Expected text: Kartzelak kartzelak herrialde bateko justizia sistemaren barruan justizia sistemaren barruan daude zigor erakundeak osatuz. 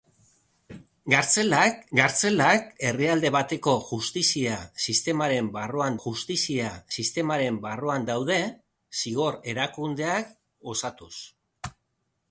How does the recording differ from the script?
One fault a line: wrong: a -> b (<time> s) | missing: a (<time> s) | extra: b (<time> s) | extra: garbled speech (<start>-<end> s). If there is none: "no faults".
no faults